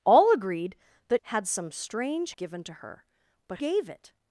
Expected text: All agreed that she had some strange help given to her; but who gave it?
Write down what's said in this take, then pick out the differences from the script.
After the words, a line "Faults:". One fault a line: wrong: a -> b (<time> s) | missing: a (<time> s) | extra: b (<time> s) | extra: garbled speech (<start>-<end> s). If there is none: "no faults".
All agreed that had some strange given to her; but gave it?
Faults:
missing: she (1.2 s)
missing: help (2.3 s)
missing: who (3.6 s)